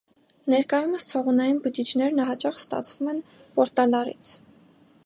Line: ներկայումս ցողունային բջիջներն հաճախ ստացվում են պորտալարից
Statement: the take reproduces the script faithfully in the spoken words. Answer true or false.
true